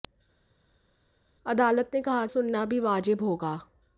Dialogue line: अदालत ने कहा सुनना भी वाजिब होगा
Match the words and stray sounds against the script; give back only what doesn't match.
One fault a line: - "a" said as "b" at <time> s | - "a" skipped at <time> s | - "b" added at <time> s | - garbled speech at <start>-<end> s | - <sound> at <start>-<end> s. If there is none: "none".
none